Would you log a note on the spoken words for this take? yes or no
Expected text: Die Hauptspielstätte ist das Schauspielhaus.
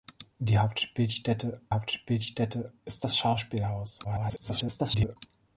yes